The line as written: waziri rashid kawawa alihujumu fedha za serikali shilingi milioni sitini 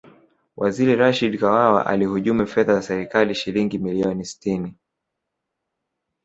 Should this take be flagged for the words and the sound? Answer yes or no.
no